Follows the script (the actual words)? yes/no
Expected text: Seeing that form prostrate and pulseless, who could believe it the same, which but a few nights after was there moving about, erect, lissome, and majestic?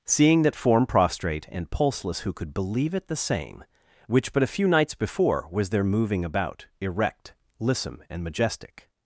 no